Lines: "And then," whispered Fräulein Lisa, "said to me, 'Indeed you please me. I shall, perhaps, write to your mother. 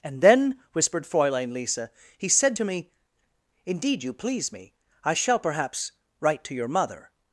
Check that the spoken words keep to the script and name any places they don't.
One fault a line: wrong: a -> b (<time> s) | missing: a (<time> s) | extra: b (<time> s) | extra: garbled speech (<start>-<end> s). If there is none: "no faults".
extra: he (2.2 s)